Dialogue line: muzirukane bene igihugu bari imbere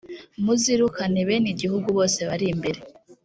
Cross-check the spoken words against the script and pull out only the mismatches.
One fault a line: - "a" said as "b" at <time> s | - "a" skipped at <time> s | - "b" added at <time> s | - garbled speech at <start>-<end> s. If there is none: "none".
- "bose" added at 2.0 s